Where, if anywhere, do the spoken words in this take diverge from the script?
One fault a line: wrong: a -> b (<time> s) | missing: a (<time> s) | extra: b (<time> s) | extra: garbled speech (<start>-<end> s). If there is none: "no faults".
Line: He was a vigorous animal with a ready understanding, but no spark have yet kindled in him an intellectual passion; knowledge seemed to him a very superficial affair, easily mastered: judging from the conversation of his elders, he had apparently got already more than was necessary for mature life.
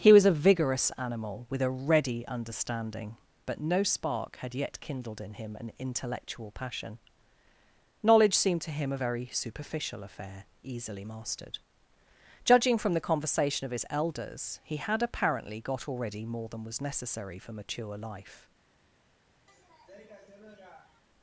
wrong: have -> had (4.4 s)